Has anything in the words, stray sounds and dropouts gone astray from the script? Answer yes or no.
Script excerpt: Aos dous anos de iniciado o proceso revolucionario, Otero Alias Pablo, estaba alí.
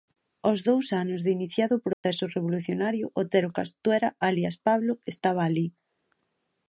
yes